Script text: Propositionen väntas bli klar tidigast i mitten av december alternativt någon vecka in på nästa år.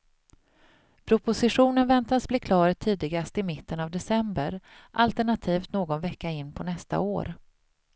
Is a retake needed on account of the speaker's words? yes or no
no